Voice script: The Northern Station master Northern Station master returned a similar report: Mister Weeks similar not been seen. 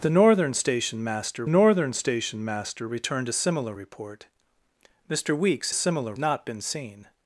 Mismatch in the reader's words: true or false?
false